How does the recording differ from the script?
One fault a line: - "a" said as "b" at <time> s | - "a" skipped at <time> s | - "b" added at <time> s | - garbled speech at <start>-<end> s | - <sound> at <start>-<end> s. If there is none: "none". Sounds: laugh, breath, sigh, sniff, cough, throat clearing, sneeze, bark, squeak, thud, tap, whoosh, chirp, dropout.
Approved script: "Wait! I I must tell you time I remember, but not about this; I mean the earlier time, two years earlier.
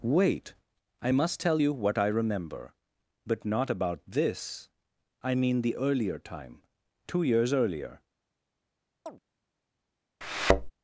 - "I" skipped at 1.1 s
- "time" said as "what" at 1.7 s
- chirp at 9.1-9.2 s
- thud at 10.2-10.7 s